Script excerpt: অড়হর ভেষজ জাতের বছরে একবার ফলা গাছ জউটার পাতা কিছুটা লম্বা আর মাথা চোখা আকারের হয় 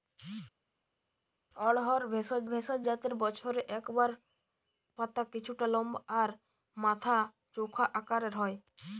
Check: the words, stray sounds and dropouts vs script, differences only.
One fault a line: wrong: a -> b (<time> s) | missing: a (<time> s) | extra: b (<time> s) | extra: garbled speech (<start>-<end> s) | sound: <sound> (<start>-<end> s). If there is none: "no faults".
extra: ভেষজ (2.5 s)
missing: ফলা গাছ জউটার (4.1 s)